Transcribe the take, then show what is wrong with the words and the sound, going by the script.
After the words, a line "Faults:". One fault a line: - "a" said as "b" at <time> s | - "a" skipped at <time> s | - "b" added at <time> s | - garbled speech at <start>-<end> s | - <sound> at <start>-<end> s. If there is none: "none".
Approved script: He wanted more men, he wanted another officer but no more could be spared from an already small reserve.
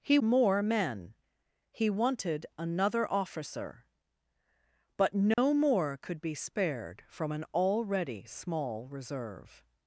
He more men, he wanted another officer but no more could be spared from an already small reserve.
Faults:
- "wanted" skipped at 0.2 s
- dropout at 5.3-5.4 s